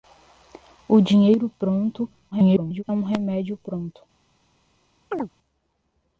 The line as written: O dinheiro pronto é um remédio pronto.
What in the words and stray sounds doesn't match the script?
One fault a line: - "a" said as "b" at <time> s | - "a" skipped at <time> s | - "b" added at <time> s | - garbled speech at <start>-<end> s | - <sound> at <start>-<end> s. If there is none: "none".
- garbled speech at 2.3-2.8 s
- chirp at 5.1-5.3 s